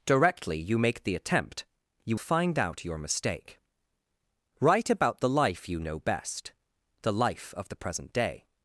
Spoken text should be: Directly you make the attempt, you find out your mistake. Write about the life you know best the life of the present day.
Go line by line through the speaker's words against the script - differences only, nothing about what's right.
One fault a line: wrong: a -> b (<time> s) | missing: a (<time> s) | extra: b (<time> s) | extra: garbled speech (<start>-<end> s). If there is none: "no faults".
no faults